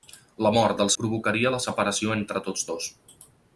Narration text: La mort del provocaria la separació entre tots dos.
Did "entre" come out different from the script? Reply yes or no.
no